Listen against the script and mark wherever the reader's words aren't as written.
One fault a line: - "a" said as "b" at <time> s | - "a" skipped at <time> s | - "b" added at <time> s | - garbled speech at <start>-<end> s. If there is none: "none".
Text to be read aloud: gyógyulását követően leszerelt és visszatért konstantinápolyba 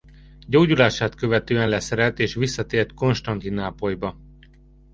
none